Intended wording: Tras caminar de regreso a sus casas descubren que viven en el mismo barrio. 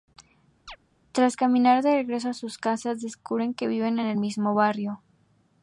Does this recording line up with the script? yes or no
yes